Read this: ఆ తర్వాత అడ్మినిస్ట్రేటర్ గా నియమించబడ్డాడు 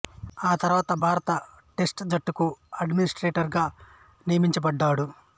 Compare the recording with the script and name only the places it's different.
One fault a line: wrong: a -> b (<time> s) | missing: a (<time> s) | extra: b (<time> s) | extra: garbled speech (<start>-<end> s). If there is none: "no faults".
extra: భారత టెస్ట్ జట్టుకు (1.0 s)